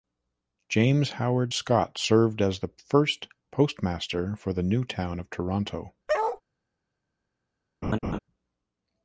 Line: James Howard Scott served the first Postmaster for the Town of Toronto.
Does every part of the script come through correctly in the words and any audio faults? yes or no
no